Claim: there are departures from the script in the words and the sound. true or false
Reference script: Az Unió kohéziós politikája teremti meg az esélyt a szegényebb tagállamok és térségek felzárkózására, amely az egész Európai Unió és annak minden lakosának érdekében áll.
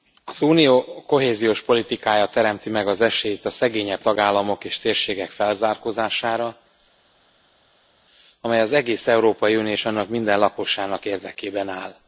false